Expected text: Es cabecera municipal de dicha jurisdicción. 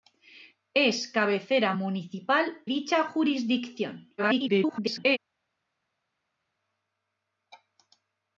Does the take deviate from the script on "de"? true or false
true